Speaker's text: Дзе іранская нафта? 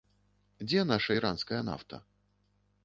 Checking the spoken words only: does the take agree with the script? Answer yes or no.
no